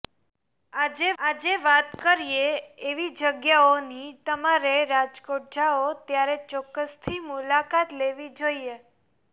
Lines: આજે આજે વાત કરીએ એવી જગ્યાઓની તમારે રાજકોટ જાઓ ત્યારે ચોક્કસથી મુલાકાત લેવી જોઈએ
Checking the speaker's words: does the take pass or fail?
pass